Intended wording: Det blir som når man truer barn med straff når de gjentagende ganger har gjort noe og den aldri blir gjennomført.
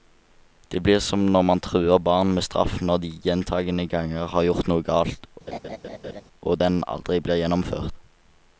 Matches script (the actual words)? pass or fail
fail